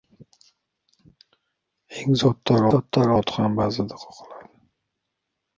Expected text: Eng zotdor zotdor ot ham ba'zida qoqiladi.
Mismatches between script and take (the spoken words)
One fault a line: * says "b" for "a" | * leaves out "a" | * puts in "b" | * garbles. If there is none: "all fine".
all fine